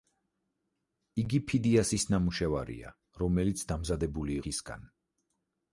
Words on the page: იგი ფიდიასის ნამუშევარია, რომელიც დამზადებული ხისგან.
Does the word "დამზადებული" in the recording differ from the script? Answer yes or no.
no